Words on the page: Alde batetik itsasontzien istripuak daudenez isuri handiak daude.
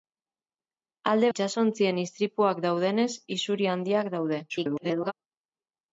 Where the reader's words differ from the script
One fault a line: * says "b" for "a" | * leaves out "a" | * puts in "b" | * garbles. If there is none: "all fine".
* leaves out "batetik"
* garbles